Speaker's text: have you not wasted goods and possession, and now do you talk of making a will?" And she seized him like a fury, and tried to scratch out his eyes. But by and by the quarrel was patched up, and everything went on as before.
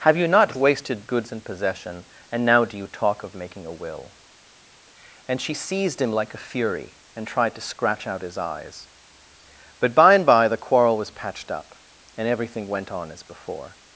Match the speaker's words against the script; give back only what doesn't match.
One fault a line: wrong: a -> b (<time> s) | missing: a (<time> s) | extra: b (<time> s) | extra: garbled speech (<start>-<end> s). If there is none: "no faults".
no faults